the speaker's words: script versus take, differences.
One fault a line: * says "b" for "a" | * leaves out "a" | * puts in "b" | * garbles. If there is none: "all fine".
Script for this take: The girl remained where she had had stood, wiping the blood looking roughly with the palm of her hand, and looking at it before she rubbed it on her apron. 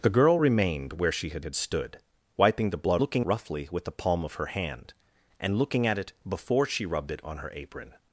all fine